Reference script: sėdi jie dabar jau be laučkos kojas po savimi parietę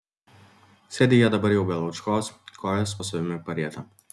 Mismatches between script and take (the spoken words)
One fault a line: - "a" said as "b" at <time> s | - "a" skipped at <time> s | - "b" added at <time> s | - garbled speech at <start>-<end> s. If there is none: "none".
none